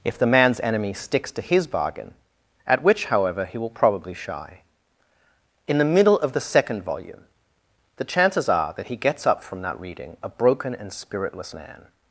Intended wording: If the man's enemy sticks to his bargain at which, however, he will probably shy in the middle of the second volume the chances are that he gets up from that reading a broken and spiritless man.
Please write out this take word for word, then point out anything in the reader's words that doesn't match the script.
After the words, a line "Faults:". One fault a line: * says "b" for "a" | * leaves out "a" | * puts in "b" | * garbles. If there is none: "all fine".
If the man's enemy sticks to his bargain at which, however, he will probably shy in the middle of the second volume the chances are that he gets up from that reading a broken and spiritless man.
Faults:
all fine